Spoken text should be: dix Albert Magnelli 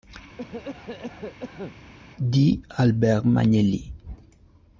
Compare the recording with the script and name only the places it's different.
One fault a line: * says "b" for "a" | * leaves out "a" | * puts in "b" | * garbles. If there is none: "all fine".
all fine